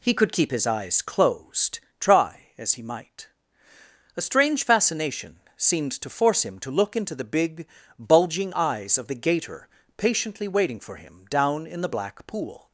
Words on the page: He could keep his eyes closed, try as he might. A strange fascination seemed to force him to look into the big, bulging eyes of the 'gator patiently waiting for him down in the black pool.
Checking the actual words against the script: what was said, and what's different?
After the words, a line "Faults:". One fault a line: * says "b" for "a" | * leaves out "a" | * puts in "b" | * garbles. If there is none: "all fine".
He could keep his eyes closed, try as he might. A strange fascination seemed to force him to look into the big, bulging eyes of the 'gator patiently waiting for him down in the black pool.
Faults:
all fine